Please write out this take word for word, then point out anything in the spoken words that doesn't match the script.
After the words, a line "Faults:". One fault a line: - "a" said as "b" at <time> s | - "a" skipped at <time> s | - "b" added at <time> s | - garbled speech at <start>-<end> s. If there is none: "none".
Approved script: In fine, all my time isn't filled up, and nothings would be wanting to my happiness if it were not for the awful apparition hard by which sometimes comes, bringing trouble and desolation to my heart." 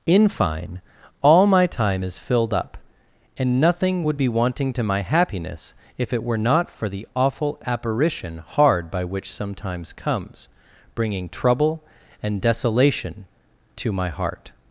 In fine, all my time is filled up, and nothing would be wanting to my happiness if it were not for the awful apparition hard by which sometimes comes, bringing trouble and desolation to my heart."
Faults:
- "isn't" said as "is" at 2.0 s
- "nothings" said as "nothing" at 3.6 s